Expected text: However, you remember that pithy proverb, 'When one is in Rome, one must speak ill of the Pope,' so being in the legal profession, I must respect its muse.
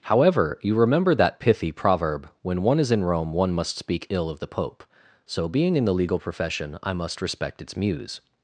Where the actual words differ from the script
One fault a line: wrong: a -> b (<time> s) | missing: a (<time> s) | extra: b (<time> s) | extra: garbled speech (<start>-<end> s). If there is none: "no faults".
no faults